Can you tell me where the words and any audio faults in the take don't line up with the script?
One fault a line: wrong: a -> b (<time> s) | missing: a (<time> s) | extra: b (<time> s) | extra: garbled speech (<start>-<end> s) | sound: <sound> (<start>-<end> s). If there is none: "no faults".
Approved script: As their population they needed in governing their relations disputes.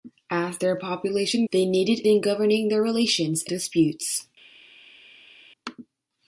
no faults